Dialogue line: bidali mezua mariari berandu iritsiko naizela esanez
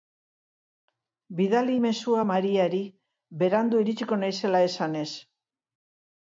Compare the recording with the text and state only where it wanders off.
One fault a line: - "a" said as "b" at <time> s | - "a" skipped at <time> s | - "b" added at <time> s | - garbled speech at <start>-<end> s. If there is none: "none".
none